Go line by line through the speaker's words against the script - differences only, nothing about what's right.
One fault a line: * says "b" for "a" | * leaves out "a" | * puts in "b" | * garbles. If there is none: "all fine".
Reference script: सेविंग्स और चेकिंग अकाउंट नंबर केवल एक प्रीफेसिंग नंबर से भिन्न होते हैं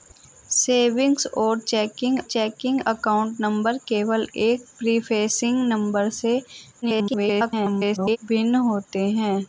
* puts in "चेकिंग"
* garbles